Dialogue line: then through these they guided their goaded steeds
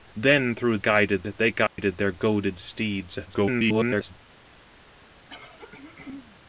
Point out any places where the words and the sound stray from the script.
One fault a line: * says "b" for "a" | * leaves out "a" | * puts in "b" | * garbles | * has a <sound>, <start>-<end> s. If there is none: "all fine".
* says "guided" for "these"
* has a dropout, 1.7-1.8 s
* garbles
* has a throat clearing, 5.3-6.4 s